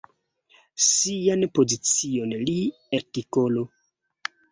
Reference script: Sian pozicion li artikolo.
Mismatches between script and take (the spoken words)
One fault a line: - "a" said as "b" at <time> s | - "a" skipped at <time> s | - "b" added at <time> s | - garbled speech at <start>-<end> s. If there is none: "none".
none